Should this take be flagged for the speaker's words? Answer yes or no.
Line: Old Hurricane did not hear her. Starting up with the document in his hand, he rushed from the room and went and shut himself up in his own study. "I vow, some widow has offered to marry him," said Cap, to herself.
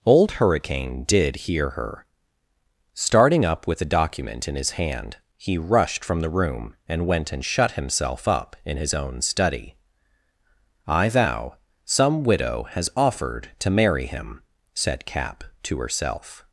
yes